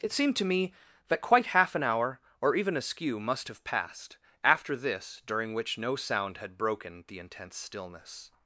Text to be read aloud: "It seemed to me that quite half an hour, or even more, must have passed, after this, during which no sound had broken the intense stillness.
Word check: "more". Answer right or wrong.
wrong